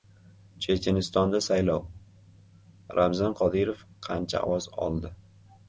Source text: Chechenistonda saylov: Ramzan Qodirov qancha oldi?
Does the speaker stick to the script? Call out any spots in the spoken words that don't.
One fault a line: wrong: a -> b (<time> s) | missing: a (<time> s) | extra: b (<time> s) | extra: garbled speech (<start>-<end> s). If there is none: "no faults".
extra: ovoz (4.5 s)